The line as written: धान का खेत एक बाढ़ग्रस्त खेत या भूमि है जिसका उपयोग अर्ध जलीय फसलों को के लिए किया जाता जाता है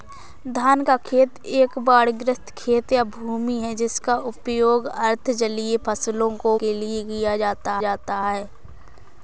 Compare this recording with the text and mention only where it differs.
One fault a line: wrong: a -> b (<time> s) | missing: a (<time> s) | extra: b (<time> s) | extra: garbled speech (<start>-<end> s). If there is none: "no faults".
no faults